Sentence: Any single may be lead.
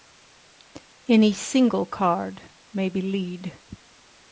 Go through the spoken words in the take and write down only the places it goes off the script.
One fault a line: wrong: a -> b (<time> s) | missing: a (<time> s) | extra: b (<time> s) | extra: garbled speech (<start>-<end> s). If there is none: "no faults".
extra: card (1.9 s)